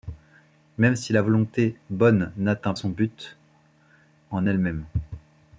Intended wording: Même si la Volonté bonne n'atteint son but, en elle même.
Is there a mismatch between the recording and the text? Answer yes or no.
no